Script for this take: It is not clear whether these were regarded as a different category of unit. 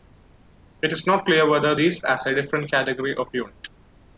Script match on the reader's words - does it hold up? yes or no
no